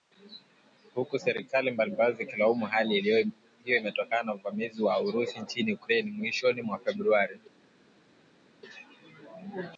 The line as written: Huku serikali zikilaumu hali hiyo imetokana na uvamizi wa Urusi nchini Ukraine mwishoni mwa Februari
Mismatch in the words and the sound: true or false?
true